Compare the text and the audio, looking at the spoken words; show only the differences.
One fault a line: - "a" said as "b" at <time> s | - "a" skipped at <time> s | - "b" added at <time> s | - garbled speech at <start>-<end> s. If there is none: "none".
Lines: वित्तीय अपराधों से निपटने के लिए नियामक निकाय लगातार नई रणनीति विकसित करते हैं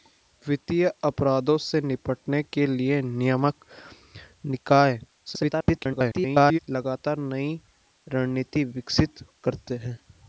- garbled speech at 5.3-6.6 s